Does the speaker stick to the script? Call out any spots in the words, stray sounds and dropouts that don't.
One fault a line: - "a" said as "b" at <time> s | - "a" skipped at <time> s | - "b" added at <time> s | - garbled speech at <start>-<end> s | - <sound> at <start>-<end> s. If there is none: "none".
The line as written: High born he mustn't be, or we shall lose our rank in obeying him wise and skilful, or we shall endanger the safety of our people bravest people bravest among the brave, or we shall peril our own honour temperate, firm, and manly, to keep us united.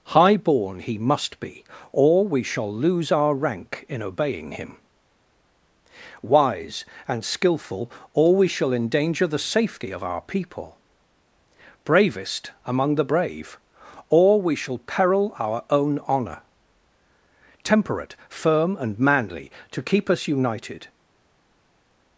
- "mustn't" said as "must" at 1.0 s
- "people bravest" skipped at 12.5 s